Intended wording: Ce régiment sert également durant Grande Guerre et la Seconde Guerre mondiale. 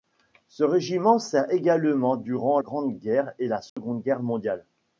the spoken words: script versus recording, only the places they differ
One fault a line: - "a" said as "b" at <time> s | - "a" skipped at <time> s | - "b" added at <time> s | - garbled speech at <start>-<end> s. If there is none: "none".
none